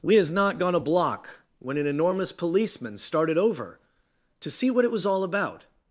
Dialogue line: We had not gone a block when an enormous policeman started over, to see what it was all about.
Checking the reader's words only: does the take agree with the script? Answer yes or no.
no